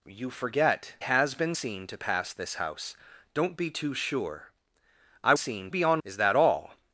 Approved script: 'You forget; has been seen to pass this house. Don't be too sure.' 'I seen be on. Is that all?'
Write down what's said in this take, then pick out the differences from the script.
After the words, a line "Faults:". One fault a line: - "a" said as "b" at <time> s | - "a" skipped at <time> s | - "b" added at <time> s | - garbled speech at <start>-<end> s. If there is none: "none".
'You forget; has been seen to pass this house. Don't be too sure.' 'I seen be on. Is that all?'
Faults:
none